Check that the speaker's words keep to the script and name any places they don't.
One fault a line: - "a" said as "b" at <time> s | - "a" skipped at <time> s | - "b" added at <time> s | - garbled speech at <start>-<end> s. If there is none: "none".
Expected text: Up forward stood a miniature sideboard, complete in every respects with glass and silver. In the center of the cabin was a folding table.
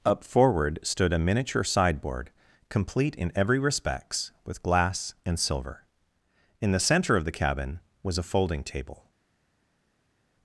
none